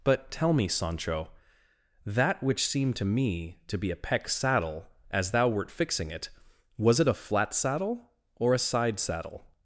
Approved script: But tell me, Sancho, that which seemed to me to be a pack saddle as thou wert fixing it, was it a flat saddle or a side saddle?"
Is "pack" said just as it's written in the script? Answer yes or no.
no